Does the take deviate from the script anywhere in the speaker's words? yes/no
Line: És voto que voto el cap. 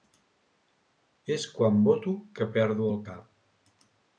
yes